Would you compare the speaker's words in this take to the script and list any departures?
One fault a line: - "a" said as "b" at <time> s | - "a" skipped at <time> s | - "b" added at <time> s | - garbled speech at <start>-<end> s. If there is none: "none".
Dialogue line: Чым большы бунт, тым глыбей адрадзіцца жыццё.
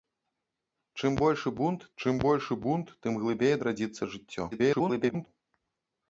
- "чым большы бунт" added at 2.0 s
- garbled speech at 4.5-5.3 s